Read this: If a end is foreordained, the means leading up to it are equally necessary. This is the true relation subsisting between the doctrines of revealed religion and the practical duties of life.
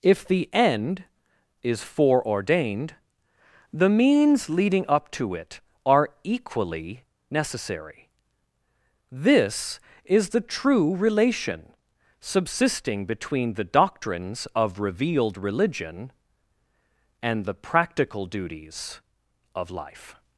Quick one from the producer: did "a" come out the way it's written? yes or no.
no